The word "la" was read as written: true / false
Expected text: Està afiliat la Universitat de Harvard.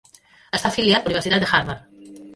true